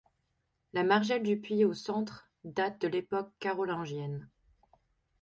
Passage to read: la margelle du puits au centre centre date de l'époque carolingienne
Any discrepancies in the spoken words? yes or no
yes